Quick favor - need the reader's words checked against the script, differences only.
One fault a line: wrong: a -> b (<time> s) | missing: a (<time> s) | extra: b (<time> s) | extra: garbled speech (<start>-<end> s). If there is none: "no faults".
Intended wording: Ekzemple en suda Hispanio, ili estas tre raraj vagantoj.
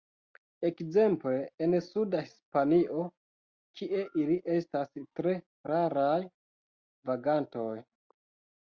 extra: kie (3.8 s)